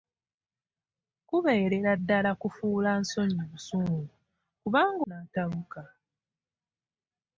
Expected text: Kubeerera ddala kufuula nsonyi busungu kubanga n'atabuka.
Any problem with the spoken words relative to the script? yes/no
no